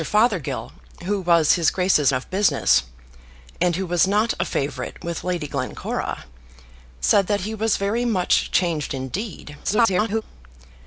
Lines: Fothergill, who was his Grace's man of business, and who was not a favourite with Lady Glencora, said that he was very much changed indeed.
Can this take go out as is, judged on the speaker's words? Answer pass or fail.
fail